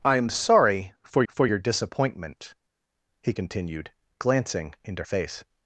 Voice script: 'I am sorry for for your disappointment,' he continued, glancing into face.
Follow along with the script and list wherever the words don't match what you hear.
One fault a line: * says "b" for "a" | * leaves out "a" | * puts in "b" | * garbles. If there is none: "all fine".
all fine